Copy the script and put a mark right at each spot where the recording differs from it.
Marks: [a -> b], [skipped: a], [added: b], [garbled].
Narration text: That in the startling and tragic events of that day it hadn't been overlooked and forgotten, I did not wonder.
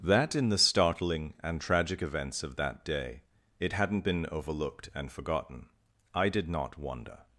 That in the startling and tragic events of that day it hadn't been overlooked and forgotten, I did not wonder.